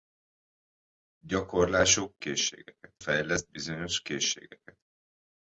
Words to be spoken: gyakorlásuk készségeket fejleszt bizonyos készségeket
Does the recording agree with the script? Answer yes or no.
yes